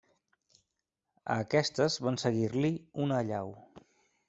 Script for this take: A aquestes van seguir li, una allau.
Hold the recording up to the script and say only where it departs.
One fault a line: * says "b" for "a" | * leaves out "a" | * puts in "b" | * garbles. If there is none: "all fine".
all fine